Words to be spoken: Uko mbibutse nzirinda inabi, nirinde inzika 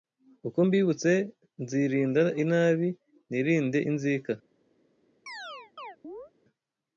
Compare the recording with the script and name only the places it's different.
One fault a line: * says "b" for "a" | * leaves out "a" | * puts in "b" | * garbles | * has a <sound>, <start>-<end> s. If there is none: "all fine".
* has a chirp, 5.3-6.3 s